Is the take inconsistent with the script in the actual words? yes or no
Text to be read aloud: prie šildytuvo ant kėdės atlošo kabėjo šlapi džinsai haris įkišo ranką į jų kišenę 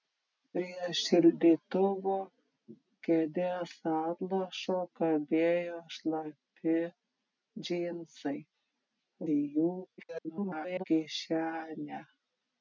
yes